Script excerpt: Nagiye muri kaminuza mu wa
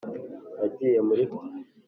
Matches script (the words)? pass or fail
fail